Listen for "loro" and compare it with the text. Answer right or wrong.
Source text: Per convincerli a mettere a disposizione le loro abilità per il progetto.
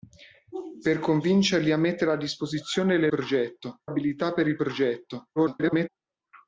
wrong